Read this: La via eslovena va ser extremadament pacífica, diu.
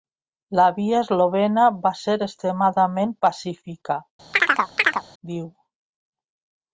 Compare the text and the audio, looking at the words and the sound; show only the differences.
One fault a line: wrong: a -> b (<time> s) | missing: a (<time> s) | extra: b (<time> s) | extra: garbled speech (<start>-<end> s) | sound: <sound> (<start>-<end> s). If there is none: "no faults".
sound: chirp (4.3-5.0 s)